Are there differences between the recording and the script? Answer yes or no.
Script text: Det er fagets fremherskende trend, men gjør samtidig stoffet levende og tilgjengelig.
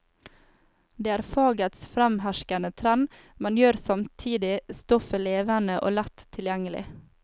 yes